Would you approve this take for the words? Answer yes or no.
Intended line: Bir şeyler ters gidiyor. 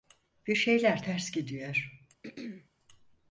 yes